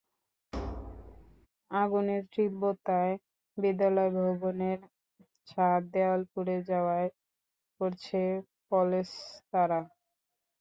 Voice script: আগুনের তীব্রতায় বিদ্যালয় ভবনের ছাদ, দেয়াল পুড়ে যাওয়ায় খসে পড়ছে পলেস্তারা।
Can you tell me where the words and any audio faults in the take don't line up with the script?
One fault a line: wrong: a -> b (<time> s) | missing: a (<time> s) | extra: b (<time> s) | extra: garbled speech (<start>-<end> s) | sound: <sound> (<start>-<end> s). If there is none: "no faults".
sound: thud (0.5-1.5 s)
missing: খসে (7.1 s)